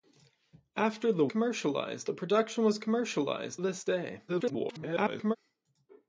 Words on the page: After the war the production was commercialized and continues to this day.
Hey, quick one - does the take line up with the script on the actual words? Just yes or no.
no